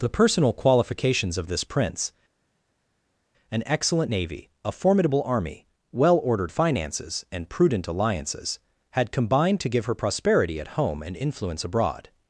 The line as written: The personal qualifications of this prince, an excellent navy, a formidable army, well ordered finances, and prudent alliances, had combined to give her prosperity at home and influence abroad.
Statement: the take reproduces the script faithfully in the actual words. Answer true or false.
true